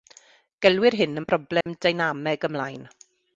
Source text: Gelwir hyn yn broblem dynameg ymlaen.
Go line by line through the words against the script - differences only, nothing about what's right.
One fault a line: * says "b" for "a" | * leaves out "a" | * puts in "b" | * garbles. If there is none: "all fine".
all fine